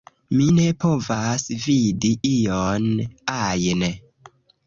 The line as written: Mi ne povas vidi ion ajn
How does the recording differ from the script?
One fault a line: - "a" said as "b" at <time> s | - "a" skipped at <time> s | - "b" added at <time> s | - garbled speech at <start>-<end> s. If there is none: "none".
none